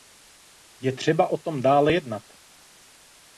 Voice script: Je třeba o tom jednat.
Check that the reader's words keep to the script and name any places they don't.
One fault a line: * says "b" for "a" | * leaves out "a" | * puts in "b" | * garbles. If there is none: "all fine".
* puts in "dále"